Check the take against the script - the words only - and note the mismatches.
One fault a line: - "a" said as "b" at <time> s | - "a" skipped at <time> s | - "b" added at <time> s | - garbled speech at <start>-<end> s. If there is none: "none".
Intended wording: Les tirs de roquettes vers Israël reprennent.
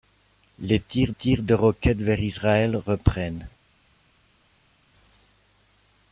- "tirs" added at 1.1 s